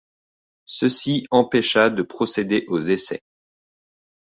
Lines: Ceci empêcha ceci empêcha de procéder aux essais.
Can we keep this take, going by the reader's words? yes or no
no